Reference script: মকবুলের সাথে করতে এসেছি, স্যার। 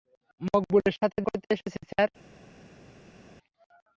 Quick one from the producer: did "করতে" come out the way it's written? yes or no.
yes